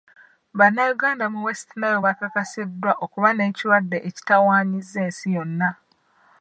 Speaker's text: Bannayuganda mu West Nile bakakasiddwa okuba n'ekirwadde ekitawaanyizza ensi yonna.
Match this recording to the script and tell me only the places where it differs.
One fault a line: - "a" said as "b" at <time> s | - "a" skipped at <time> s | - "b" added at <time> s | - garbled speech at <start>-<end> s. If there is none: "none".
none